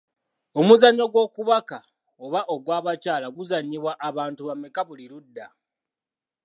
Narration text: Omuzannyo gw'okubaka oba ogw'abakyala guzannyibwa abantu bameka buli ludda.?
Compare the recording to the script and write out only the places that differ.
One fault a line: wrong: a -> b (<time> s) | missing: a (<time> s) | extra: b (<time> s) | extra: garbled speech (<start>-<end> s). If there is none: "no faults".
no faults